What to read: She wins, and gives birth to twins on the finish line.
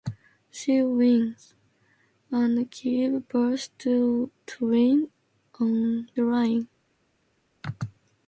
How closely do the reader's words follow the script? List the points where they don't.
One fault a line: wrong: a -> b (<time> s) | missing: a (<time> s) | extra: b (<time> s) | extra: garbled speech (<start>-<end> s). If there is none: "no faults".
missing: the finish (6.1 s)